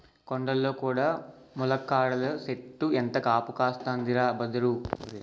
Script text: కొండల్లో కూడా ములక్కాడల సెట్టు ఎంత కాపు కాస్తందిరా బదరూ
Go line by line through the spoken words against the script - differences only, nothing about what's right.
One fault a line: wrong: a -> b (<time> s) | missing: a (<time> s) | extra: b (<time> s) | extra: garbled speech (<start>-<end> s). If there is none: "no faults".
no faults